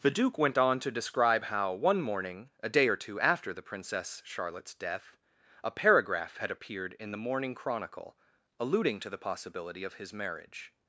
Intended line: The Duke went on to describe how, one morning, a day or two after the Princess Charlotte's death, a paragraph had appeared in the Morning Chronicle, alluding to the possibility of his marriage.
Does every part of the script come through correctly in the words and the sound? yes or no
yes